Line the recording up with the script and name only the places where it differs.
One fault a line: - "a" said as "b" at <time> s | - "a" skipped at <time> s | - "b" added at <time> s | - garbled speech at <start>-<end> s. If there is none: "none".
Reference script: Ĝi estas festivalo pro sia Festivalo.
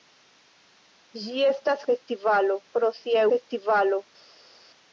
none